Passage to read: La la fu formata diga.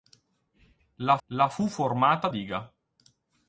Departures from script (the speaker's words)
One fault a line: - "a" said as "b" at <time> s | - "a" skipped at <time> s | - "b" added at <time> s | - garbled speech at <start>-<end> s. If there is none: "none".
none